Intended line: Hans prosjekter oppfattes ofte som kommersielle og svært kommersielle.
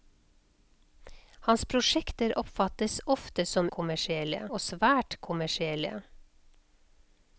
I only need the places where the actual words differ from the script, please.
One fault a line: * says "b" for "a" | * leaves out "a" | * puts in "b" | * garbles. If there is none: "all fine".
all fine